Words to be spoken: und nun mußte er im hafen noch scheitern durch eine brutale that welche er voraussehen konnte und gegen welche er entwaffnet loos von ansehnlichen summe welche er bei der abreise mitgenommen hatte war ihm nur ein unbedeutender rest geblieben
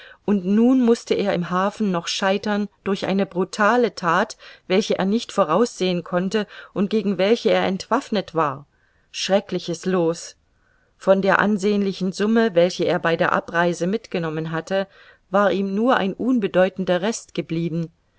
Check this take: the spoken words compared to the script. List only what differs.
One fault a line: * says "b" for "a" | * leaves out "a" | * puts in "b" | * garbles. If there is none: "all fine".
* puts in "nicht"
* puts in "war schreckliches"
* puts in "der"